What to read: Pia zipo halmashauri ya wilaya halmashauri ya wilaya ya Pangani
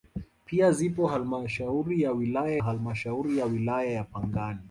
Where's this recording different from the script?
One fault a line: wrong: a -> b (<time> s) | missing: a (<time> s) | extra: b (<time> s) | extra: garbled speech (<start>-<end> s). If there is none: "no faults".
no faults